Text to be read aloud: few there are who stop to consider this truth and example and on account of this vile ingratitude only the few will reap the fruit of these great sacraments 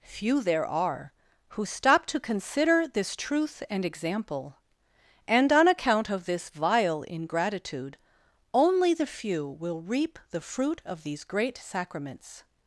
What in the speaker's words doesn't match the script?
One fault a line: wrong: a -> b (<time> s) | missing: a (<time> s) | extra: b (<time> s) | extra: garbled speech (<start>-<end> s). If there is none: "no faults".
no faults